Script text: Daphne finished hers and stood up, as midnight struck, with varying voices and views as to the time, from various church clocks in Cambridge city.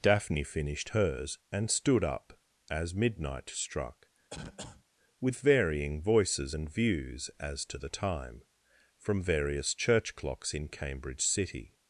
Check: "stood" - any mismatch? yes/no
no